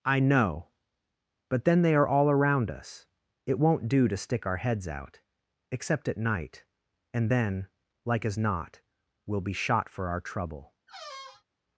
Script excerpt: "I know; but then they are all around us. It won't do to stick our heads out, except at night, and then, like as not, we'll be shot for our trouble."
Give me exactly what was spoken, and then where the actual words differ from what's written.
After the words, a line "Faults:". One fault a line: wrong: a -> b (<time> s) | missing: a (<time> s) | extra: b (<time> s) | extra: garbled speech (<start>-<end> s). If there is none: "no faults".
"I know; but then they are all around us. It won't do to stick our heads out, except at night, and then, like as not, we'll be shot for our trouble."
Faults:
no faults